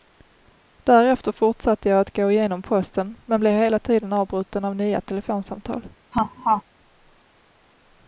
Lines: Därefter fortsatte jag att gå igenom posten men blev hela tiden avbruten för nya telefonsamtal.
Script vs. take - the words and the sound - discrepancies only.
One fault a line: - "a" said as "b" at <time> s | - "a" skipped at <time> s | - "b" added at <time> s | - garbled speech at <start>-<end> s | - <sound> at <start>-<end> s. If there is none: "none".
- "för" said as "av" at 4.6 s
- laugh at 6.1-6.6 s